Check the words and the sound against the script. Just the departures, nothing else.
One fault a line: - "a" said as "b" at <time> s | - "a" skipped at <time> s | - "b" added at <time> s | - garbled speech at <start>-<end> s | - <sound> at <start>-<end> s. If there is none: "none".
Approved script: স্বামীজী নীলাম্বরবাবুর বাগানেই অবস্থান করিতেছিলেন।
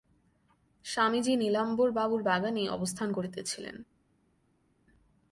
none